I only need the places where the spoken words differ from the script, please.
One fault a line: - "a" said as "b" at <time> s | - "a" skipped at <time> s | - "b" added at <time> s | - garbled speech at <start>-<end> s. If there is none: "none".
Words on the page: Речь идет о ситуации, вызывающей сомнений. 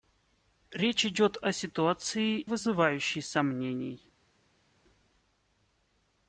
none